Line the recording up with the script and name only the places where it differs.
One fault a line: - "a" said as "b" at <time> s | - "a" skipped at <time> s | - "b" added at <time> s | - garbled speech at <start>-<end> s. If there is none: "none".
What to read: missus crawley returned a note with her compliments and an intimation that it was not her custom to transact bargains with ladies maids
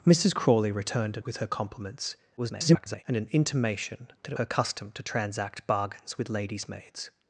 - "note" skipped at 1.2 s
- garbled speech at 2.4-3.0 s
- "was not" skipped at 4.4 s